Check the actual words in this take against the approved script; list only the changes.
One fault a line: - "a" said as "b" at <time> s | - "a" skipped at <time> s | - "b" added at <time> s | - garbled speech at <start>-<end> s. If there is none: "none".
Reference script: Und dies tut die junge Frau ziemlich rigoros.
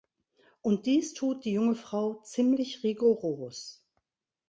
none